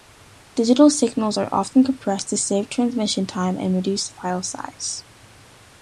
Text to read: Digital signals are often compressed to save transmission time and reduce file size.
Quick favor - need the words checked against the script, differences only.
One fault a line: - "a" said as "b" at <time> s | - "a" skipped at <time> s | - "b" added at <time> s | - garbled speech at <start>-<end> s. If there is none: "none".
none